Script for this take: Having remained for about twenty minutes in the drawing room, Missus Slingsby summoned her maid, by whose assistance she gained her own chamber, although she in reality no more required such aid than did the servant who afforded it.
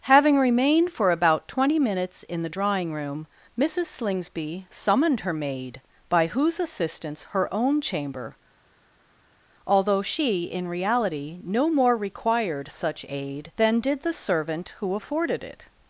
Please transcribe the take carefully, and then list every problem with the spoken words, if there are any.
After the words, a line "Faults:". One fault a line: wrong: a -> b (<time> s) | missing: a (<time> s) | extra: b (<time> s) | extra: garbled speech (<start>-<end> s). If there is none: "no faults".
Having remained for about twenty minutes in the drawing room, Missus Slingsby summoned her maid, by whose assistance her own chamber, although she in reality no more required such aid than did the servant who afforded it.
Faults:
missing: she gained (7.2 s)